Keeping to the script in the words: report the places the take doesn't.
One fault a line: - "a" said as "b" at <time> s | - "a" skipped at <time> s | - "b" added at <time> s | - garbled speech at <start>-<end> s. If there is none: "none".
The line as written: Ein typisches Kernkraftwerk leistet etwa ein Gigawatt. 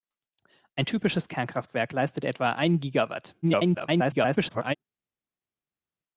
- garbled speech at 3.4-4.8 s